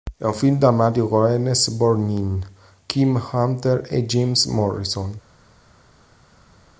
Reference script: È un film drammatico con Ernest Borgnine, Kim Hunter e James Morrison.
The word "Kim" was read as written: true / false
true